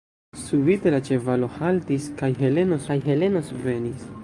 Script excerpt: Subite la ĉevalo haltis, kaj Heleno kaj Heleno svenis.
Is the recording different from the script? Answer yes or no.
no